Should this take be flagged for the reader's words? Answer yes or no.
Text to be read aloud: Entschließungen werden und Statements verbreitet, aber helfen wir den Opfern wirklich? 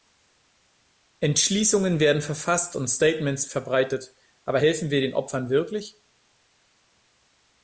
yes